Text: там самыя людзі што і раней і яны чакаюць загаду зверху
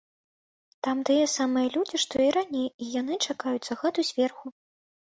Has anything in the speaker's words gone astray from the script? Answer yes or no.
yes